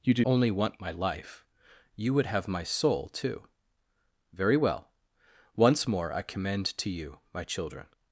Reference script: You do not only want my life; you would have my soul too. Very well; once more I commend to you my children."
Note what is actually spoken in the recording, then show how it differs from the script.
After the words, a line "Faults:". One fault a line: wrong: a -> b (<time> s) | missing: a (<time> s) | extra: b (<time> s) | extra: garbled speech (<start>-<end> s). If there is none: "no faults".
You do only want my life; you would have my soul too. Very well; once more I commend to you my children."
Faults:
missing: not (0.2 s)